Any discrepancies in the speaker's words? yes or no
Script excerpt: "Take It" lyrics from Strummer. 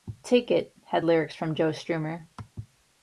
yes